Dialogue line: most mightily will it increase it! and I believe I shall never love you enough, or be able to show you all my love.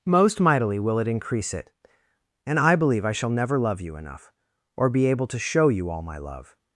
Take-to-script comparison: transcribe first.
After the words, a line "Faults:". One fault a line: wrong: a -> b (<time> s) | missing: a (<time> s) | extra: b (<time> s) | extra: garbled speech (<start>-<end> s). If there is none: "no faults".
most mightily will it increase it! and I believe I shall never love you enough, or be able to show you all my love.
Faults:
no faults